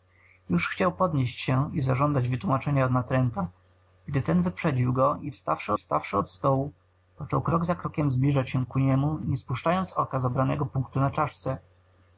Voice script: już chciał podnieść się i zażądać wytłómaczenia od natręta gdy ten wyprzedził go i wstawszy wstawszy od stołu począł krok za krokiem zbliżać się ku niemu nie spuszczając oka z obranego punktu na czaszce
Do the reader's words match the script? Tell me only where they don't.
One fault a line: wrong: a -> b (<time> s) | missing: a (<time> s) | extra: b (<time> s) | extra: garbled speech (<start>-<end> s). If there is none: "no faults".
no faults